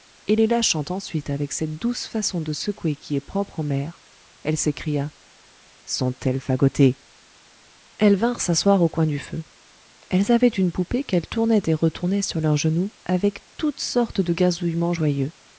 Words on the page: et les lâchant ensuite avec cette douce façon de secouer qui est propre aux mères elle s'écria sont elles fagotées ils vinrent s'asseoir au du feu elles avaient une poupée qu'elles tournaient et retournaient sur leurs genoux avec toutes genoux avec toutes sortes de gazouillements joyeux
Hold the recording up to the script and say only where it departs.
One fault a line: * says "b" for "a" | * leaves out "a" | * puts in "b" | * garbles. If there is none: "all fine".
* says "elles" for "ils"
* puts in "coin"
* leaves out "genoux avec toutes"